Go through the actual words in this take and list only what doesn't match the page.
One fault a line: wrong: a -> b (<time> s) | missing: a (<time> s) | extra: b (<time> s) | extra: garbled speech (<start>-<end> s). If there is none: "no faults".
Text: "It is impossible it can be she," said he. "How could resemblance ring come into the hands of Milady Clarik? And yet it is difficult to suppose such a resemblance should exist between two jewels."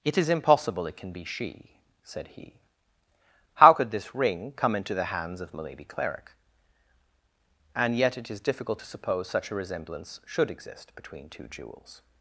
wrong: resemblance -> this (3.9 s)